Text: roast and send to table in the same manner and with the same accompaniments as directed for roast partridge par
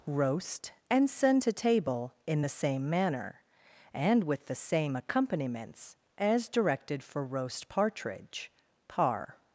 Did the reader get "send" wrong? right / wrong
right